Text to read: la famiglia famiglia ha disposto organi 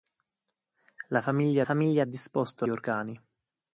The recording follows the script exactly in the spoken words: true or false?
true